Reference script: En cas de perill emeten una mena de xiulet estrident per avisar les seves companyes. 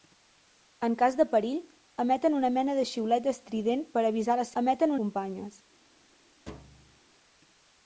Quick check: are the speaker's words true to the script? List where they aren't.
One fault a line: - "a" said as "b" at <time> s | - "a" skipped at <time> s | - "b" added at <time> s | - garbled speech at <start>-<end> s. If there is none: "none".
- "seves" said as "emeten" at 4.6 s